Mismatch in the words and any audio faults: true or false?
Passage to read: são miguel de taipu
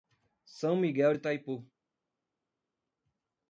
false